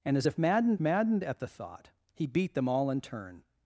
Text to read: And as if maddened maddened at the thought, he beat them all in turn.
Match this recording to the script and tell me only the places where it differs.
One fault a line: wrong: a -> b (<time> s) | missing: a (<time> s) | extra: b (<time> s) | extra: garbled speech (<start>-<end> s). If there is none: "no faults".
no faults